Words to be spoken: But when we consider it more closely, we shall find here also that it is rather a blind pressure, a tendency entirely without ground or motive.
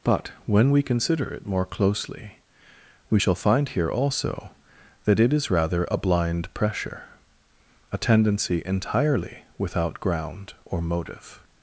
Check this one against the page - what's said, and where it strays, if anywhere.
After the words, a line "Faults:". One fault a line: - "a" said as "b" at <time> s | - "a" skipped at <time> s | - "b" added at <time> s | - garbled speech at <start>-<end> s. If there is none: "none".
But when we consider it more closely, we shall find here also that it is rather a blind pressure, a tendency entirely without ground or motive.
Faults:
none